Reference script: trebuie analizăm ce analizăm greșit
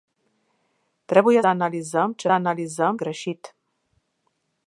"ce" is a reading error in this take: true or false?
false